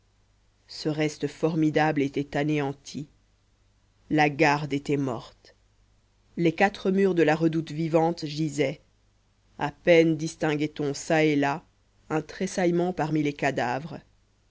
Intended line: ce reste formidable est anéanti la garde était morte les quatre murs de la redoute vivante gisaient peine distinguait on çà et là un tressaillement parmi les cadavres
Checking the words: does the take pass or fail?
fail